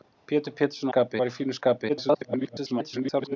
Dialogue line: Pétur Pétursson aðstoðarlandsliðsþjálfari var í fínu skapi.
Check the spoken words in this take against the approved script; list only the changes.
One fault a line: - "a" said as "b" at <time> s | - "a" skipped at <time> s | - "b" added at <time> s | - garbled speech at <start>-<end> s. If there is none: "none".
- "aðstoðarlandsliðsþjálfari" said as "skapi" at 0.9 s
- garbled speech at 1.9-3.4 s